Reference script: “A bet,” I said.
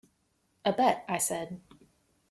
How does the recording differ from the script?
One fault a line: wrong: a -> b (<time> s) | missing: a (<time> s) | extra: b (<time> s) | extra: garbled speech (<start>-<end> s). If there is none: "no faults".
no faults